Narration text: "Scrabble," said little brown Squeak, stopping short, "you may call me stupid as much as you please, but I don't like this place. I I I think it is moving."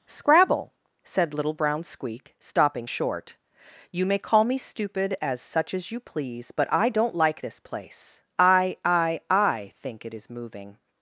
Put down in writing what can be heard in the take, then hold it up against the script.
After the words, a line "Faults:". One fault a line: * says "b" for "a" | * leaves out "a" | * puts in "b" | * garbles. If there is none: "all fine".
"Scrabble," said little brown Squeak, stopping short, "you may call me stupid as such as you please, but I don't like this place. I I I think it is moving."
Faults:
* says "such" for "much"